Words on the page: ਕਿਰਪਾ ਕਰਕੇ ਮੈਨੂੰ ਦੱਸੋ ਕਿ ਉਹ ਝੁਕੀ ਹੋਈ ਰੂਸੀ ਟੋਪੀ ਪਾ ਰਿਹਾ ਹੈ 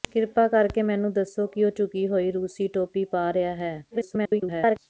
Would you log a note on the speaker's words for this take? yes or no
yes